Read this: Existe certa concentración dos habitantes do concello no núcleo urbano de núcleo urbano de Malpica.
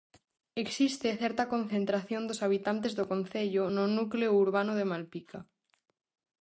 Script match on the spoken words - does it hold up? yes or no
no